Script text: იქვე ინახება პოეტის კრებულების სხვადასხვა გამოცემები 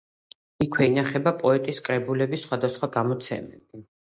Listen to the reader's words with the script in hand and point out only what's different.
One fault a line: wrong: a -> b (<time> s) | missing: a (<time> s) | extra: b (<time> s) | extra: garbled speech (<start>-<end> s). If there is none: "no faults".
no faults